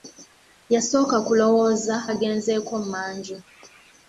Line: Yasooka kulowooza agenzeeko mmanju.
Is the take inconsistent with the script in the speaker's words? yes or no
no